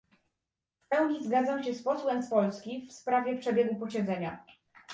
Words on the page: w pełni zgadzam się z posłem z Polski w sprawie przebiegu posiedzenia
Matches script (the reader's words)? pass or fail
pass